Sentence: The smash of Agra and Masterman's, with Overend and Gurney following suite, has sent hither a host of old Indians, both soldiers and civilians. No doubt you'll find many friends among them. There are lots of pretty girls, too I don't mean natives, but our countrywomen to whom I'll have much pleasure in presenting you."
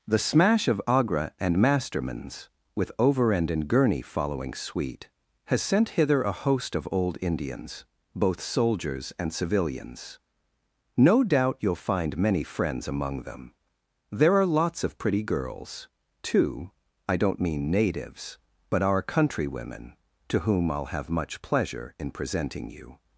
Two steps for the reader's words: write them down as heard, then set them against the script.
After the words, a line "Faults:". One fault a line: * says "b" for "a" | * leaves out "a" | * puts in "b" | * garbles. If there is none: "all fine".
The smash of Agra and Masterman's, with Overend and Gurney following suite, has sent hither a host of old Indians, both soldiers and civilians. No doubt you'll find many friends among them. There are lots of pretty girls, too I don't mean natives, but our countrywomen to whom I'll have much pleasure in presenting you."
Faults:
all fine